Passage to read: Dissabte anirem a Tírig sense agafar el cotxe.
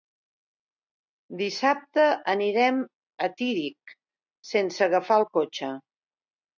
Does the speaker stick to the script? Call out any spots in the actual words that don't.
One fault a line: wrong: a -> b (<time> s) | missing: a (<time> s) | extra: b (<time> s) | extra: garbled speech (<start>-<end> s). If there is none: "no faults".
no faults